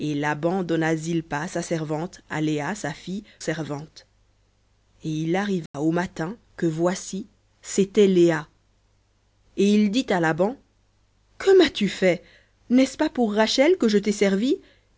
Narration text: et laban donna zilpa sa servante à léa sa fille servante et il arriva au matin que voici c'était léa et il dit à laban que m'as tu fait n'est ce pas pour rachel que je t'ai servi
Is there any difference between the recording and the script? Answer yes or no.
no